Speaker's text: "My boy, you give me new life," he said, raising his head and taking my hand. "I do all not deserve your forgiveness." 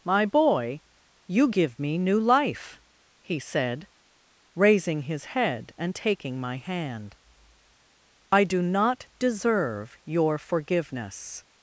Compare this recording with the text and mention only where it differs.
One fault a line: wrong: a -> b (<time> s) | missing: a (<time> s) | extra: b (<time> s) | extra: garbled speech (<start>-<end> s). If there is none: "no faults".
missing: all (8.6 s)